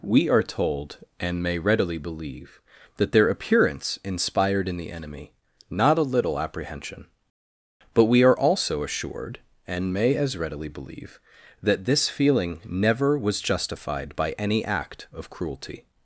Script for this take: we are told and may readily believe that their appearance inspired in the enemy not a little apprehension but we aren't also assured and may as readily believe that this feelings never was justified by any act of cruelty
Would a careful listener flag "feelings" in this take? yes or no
yes